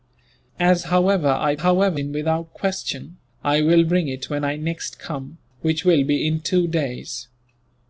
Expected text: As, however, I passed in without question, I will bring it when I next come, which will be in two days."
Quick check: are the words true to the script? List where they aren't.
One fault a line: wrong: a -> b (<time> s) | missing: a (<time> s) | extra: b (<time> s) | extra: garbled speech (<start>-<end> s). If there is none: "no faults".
wrong: passed -> however (1.6 s)